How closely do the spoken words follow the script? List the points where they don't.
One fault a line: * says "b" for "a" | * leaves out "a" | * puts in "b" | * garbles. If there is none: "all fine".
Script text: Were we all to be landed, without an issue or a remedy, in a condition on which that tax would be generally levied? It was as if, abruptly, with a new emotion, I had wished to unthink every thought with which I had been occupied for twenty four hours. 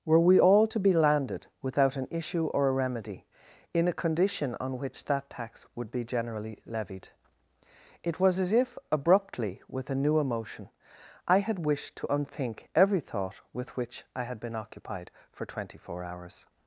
all fine